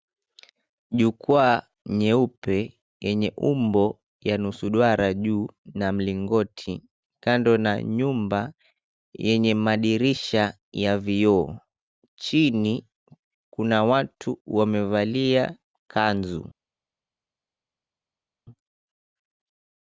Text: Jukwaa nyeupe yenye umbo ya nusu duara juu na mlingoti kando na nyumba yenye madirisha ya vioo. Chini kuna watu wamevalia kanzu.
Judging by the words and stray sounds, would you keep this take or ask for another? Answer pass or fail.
pass